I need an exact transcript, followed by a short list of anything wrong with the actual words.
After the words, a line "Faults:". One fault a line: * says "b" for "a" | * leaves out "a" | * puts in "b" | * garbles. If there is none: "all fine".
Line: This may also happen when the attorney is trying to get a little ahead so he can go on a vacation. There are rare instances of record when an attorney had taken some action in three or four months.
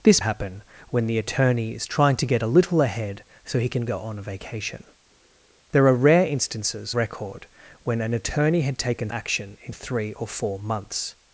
This happen when the attorney is trying to get a little ahead so he can go on a vacation. There are rare instances record when an attorney had taken action in three or four months.
Faults:
* leaves out "may also"
* leaves out "of"
* leaves out "some"